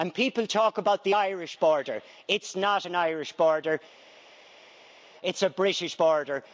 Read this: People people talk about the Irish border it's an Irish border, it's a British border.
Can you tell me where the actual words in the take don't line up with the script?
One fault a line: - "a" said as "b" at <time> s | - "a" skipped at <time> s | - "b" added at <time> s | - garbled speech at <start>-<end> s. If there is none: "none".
- "people" skipped at 0.5 s
- "not" added at 2.5 s